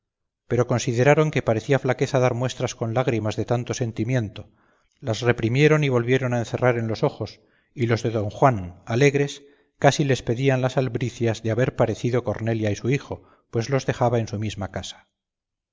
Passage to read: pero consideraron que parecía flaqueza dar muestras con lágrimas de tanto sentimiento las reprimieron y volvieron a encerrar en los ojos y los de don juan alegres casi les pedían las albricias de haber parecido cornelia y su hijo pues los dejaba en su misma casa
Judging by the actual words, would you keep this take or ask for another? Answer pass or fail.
pass